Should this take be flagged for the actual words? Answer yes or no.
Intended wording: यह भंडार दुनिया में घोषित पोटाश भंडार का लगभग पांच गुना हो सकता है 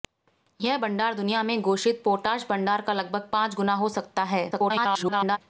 yes